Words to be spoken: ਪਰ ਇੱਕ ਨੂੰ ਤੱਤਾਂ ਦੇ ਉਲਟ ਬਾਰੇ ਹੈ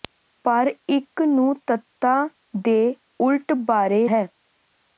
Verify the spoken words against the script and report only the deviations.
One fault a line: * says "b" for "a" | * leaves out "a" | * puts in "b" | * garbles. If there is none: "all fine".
all fine